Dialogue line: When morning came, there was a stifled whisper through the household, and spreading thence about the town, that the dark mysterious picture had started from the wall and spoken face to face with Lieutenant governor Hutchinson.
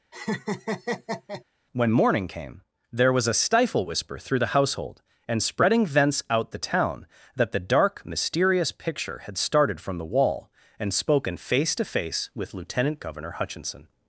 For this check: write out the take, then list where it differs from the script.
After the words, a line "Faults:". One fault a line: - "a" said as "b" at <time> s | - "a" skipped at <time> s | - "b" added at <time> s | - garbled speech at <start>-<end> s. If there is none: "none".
When morning came, there was a stifle whisper through the household, and spreading thence out the town, that the dark mysterious picture had started from the wall and spoken face to face with Lieutenant governor Hutchinson.
Faults:
- "stifled" said as "stifle" at 3.3 s
- "about" said as "out" at 6.3 s